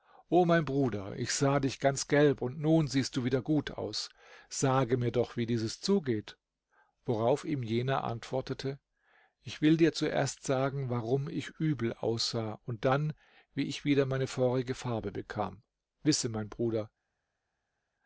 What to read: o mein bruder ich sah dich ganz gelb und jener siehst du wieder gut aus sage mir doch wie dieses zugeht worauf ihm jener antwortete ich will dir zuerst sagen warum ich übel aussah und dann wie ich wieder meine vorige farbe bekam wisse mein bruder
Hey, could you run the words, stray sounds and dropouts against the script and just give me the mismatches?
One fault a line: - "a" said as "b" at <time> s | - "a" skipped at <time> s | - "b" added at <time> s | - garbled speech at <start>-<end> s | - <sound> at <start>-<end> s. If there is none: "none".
- "jener" said as "nun" at 2.6 s